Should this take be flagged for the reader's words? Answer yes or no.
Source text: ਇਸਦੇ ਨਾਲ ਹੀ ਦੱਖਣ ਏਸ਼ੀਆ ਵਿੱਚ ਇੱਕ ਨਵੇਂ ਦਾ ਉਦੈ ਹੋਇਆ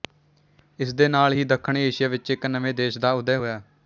yes